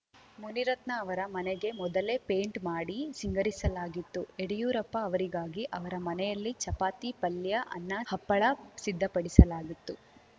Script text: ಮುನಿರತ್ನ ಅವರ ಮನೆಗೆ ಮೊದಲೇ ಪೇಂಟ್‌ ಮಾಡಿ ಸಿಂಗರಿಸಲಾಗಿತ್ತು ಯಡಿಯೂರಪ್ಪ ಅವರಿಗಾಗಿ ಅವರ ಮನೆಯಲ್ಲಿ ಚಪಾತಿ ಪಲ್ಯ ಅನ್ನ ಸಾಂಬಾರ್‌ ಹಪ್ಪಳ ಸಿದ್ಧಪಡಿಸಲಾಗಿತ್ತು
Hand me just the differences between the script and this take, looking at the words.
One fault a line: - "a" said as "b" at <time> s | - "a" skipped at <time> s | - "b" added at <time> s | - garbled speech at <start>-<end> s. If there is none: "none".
- "ಸಾಂಬಾರ್" skipped at 8.0 s